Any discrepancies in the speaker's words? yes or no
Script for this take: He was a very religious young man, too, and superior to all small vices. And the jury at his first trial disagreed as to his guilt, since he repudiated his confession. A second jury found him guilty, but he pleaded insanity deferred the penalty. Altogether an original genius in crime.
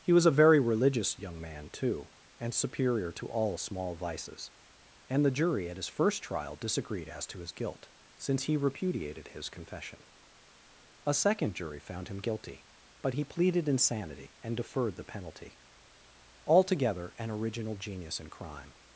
yes